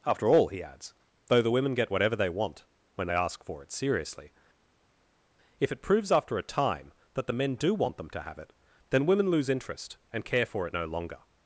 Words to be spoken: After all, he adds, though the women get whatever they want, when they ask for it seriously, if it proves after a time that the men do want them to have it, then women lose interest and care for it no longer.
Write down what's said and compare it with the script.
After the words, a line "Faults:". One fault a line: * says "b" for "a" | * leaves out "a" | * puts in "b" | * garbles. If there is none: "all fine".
After all, he adds, though the women get whatever they want, when they ask for it seriously, if it proves after a time that the men do want them to have it, then women lose interest and care for it no longer.
Faults:
all fine